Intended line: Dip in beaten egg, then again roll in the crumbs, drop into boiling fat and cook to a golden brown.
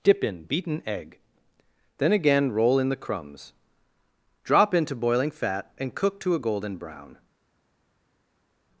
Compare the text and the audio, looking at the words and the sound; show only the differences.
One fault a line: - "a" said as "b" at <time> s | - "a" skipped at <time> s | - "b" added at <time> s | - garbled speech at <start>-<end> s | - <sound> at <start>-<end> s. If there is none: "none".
none